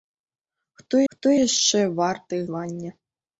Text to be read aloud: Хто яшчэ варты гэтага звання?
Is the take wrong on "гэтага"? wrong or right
wrong